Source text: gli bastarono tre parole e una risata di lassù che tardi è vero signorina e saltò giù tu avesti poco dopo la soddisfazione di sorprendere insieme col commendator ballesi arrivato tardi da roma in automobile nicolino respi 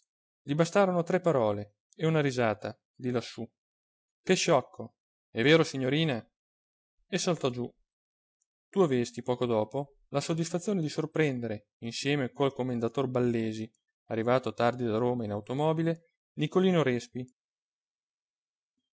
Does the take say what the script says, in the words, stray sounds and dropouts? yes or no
no